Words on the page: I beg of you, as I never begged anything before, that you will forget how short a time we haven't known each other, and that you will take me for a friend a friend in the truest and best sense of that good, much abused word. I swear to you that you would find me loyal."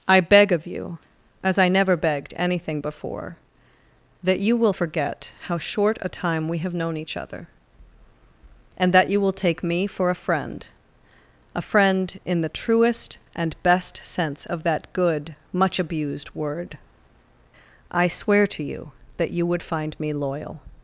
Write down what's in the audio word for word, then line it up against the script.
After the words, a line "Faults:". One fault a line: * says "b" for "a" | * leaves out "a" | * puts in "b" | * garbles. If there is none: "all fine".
I beg of you, as I never begged anything before, that you will forget how short a time we have known each other, and that you will take me for a friend a friend in the truest and best sense of that good, much abused word. I swear to you that you would find me loyal."
Faults:
* says "have" for "haven't"